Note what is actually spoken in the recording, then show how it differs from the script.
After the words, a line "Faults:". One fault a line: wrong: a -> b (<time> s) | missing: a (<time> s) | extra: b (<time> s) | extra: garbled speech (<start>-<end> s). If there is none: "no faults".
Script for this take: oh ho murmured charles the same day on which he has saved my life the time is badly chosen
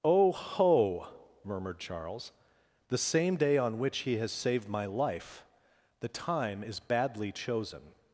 oh ho murmured charles the same day on which he has saved my life the time is badly chosen
Faults:
no faults